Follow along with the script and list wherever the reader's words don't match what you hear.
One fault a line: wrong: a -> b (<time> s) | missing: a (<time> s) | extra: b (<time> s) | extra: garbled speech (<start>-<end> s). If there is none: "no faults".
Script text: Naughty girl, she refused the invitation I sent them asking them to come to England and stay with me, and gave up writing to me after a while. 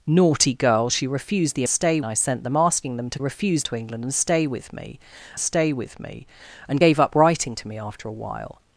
wrong: invitation -> stay (1.7 s)
wrong: come -> refused (3.2 s)
extra: stay with me (5.4 s)